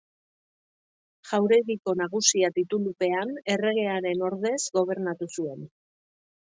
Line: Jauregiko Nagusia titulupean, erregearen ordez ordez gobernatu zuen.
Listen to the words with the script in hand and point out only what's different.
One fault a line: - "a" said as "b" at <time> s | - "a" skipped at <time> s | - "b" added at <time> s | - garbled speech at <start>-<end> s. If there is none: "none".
- "ordez" skipped at 4.6 s